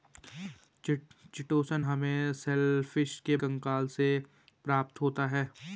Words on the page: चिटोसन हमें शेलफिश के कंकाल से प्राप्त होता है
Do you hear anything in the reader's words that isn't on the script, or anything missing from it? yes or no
no